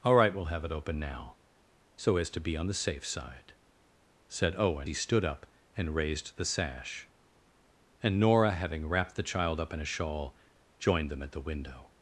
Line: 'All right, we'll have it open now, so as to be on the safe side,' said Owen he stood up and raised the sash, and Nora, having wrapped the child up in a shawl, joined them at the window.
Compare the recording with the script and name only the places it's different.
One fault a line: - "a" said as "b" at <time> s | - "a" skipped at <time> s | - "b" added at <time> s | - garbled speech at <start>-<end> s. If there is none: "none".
none